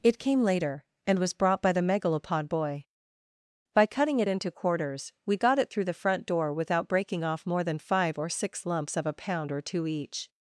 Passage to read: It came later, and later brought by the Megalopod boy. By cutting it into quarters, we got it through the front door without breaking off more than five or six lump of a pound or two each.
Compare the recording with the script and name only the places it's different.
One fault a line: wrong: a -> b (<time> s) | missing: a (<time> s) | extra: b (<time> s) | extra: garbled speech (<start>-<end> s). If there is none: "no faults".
wrong: later -> was (1.2 s)
wrong: lump -> lumps (8.7 s)